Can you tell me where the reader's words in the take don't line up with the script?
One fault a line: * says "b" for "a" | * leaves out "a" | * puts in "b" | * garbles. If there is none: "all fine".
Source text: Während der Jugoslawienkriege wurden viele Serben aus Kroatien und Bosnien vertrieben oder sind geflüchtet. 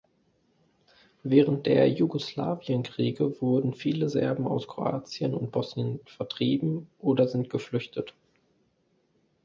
all fine